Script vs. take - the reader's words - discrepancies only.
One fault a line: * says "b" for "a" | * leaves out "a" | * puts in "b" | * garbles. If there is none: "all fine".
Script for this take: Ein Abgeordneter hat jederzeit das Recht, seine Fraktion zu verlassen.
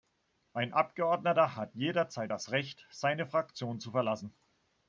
all fine